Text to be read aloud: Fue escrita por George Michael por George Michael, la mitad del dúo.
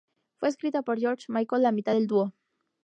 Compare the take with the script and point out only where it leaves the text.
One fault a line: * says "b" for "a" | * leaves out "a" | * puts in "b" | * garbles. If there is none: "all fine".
* leaves out "por George Michael"